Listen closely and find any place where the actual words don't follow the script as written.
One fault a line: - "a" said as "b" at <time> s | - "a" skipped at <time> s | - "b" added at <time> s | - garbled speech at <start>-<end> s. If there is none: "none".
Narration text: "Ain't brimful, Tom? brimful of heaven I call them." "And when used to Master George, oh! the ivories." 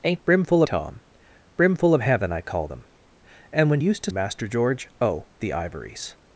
none